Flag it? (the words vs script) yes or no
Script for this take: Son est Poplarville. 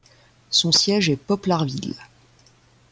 yes